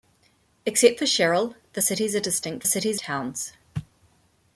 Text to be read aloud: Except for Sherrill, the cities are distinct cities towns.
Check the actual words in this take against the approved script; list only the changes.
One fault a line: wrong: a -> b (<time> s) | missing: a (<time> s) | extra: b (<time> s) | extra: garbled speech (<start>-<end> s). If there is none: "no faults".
no faults